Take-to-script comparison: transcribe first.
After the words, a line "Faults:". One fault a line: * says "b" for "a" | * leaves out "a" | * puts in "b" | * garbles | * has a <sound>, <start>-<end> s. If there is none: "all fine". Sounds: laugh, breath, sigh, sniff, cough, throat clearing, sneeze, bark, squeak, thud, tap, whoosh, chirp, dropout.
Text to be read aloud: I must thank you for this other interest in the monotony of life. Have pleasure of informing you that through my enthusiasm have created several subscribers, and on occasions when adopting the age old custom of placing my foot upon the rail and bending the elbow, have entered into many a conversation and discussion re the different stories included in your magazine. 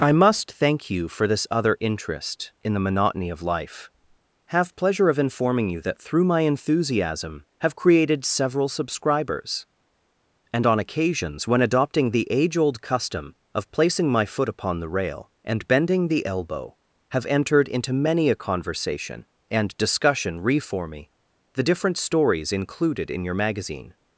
I must thank you for this other interest in the monotony of life. Have pleasure of informing you that through my enthusiasm have created several subscribers, and on occasions when adopting the age old custom of placing my foot upon the rail and bending the elbow, have entered into many a conversation and discussion re for me the different stories included in your magazine.
Faults:
* puts in "for me"